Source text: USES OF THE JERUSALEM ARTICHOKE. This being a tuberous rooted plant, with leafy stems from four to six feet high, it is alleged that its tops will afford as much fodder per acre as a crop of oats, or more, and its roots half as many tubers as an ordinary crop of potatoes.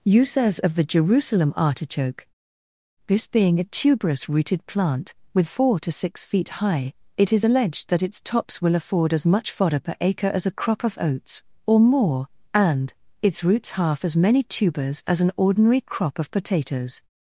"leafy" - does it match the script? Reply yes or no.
no